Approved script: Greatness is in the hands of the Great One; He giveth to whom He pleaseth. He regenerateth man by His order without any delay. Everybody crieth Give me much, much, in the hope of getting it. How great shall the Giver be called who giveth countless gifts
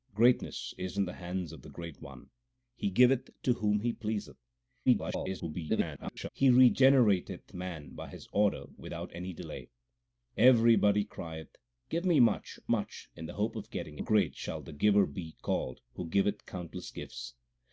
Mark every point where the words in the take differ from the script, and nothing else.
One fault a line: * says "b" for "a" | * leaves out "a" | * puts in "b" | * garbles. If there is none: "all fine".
* garbles
* leaves out "it How"